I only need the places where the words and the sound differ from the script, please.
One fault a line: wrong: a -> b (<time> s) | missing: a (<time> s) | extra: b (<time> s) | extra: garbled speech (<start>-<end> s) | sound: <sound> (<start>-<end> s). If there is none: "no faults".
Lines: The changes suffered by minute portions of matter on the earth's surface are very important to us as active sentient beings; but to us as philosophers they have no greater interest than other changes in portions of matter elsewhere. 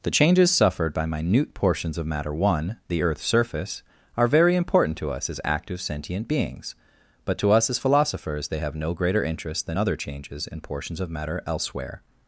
wrong: on -> one (2.3 s)